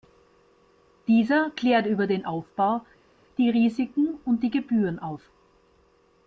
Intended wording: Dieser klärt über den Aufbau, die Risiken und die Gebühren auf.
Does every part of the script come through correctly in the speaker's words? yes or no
yes